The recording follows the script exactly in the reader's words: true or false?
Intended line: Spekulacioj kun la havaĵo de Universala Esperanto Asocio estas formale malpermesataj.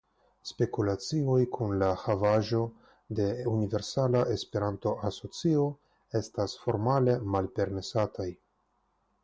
true